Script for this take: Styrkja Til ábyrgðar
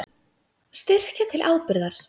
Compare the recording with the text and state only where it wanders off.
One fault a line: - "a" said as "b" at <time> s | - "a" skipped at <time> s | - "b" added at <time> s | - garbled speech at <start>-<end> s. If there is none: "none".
none